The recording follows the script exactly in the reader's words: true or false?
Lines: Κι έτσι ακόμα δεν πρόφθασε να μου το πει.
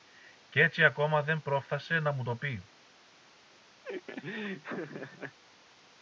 true